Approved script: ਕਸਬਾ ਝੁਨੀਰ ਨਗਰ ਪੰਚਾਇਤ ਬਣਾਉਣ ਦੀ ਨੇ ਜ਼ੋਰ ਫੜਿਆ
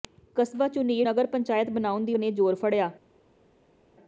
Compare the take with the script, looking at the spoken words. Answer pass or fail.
pass